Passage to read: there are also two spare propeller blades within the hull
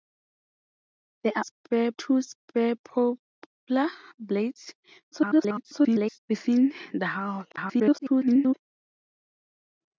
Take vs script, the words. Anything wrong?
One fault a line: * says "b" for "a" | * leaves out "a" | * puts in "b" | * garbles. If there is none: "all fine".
* says "spare" for "also"
* garbles
* garbles